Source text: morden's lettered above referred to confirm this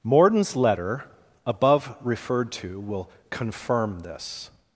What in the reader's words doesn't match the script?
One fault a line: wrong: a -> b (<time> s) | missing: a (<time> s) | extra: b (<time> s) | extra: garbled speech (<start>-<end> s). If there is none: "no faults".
wrong: lettered -> letter (0.6 s)
extra: will (2.8 s)